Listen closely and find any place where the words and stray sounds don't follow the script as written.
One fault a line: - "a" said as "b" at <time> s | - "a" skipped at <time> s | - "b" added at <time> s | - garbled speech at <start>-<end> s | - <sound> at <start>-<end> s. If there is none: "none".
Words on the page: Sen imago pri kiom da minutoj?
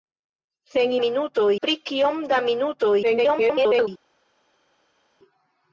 - "imago" said as "minutoj" at 1.0 s
- garbled speech at 3.0-3.9 s